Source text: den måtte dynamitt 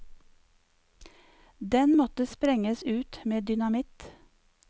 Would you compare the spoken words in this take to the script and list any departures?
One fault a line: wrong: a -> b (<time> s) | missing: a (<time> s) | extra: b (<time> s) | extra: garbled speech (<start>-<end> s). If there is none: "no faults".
extra: sprenges ut med (2.3 s)